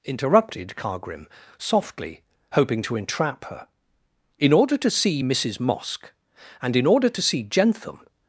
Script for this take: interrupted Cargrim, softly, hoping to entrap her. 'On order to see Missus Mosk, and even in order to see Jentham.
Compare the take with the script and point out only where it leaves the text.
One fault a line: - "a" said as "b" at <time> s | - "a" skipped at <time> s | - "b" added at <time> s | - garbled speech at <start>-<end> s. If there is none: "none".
- "On" said as "In" at 4.4 s
- "even" skipped at 6.7 s